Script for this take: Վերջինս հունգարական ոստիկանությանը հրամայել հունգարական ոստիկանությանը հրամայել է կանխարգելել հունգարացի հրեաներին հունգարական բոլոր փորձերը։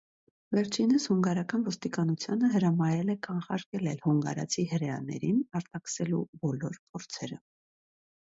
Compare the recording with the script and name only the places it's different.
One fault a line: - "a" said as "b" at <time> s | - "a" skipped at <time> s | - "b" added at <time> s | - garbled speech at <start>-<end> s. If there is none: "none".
- "հունգարական ոստիկանությանը հրամայել" skipped at 3.1 s
- "հունգարական" said as "արտաքսելու" at 5.6 s